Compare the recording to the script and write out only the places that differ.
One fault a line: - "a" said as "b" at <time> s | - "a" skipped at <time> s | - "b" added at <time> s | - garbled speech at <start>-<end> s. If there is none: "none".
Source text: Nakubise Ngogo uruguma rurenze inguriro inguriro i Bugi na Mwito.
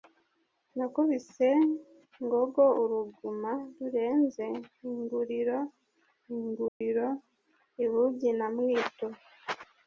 none